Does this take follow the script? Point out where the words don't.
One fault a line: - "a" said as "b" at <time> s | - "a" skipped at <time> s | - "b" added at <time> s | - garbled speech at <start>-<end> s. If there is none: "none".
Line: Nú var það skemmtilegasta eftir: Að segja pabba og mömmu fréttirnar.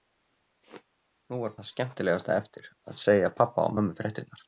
none